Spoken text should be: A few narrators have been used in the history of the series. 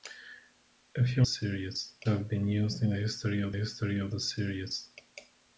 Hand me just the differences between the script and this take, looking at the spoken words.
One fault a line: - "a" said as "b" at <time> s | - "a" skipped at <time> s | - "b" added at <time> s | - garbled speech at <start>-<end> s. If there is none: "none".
- "narrators" said as "series" at 1.2 s
- "history of" added at 3.5 s